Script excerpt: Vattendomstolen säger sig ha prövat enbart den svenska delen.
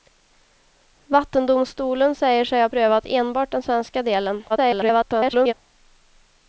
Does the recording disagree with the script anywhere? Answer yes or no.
yes